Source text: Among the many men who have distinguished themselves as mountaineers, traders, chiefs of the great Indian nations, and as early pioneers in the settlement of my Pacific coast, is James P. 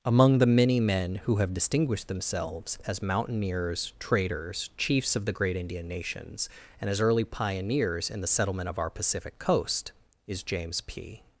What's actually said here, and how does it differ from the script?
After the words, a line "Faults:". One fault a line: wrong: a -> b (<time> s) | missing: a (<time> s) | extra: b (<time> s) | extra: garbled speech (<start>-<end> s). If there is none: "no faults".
Among the many men who have distinguished themselves as mountaineers, traders, chiefs of the great Indian nations, and as early pioneers in the settlement of our Pacific coast, is James P.
Faults:
wrong: my -> our (8.8 s)